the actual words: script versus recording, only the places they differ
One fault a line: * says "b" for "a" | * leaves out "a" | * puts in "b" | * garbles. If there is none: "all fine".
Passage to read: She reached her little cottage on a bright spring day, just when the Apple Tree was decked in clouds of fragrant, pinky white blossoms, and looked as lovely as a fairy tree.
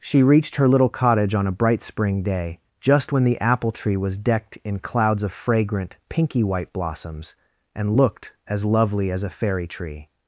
all fine